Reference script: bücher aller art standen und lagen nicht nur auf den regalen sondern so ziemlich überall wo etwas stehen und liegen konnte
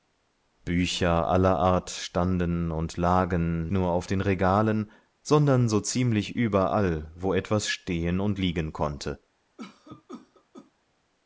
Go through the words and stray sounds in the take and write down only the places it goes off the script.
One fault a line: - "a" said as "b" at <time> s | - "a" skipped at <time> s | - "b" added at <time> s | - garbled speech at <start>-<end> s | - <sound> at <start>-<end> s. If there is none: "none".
- "nicht" skipped at 3.7 s
- cough at 9.6-10.7 s